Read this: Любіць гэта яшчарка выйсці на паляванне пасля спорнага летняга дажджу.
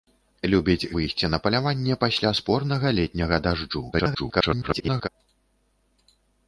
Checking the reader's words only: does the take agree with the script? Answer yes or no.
no